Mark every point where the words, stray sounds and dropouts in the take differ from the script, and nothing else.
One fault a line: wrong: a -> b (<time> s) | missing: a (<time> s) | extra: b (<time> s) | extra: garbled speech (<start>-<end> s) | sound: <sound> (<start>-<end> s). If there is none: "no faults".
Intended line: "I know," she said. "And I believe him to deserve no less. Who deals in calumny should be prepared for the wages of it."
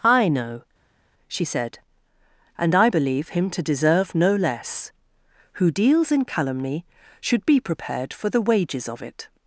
no faults